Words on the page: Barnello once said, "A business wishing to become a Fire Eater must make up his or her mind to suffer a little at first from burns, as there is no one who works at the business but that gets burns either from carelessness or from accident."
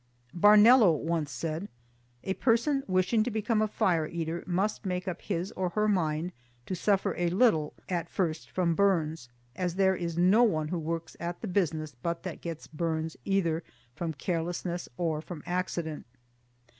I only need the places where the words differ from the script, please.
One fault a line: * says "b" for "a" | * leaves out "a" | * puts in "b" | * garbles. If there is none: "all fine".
* says "person" for "business"